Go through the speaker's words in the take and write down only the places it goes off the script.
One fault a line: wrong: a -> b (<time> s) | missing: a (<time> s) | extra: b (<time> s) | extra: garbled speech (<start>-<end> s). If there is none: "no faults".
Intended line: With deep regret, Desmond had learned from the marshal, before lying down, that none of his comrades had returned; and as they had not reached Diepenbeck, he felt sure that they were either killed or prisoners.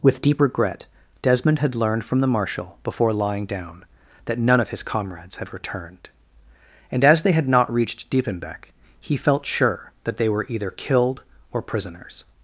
no faults